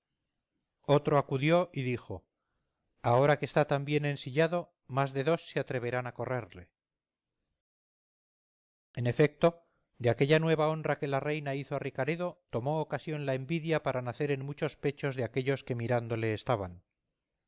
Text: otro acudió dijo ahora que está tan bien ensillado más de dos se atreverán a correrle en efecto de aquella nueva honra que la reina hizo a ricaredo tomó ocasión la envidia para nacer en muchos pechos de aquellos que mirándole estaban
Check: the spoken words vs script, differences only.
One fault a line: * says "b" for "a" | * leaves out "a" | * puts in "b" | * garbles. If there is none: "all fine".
* puts in "y"